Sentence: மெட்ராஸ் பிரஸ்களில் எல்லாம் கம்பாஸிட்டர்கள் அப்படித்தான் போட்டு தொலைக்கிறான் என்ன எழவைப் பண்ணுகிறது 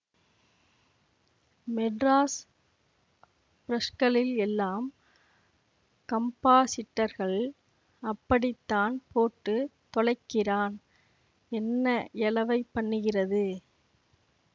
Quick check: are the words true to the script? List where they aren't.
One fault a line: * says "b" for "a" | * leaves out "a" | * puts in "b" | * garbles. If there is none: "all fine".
all fine